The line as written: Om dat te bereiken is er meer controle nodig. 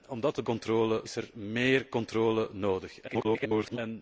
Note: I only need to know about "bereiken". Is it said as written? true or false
false